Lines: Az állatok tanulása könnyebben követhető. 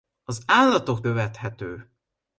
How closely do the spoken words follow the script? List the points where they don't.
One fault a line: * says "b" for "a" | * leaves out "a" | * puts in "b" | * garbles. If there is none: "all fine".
* leaves out "tanulása könnyebben"